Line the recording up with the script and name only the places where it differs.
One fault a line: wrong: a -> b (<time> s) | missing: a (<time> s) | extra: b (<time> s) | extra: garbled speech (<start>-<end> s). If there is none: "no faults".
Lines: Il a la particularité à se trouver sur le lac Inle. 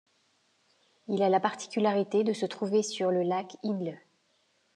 wrong: à -> de (2.2 s)